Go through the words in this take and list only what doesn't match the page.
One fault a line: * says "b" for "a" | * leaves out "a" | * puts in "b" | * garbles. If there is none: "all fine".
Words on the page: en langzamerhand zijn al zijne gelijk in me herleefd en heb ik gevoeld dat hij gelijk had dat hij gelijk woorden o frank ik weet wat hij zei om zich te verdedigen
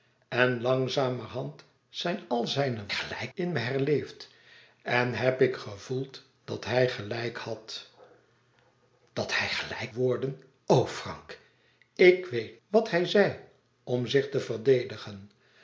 all fine